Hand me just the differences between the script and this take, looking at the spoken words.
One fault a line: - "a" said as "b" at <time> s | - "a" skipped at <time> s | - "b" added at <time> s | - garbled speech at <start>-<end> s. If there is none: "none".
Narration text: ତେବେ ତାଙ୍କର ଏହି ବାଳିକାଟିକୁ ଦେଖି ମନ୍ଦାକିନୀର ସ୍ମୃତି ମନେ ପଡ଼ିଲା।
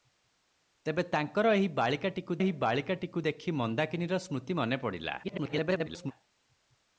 - "ଏହି ବାଳିକାଟିକୁ" added at 2.4 s
- garbled speech at 5.2-6.1 s